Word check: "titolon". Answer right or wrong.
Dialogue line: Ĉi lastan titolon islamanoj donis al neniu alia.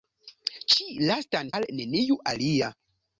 wrong